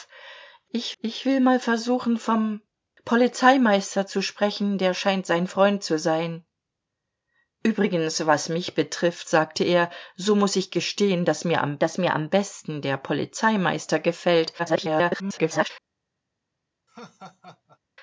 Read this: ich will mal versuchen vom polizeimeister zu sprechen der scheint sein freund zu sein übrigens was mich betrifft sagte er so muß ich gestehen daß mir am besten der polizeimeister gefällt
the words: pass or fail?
fail